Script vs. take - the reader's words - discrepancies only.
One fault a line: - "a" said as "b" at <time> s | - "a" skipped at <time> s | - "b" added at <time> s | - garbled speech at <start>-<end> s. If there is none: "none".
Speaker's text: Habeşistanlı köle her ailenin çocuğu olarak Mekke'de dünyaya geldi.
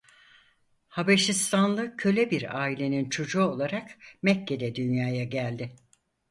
- "her" said as "bir" at 2.3 s